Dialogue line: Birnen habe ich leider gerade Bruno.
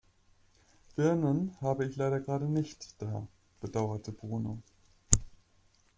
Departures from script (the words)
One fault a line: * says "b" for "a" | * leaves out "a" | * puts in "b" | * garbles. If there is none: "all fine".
* puts in "nicht da bedauerte"